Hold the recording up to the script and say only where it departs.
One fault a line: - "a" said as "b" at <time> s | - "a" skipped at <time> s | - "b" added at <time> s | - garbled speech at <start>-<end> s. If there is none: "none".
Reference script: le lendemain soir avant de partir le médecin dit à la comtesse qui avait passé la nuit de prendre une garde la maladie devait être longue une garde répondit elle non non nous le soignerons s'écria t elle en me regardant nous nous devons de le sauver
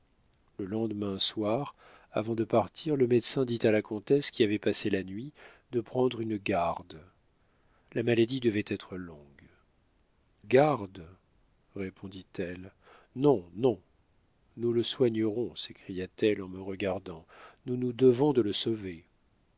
- "une" skipped at 9.5 s